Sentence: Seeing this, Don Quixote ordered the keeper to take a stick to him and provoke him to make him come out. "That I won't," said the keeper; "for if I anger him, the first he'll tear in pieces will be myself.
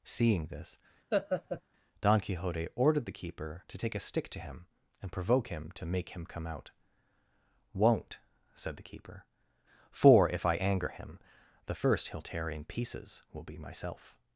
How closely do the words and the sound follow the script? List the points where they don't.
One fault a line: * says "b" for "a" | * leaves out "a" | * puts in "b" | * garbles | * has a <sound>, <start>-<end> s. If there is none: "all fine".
* has a laugh, 1.1-1.6 s
* leaves out "That I"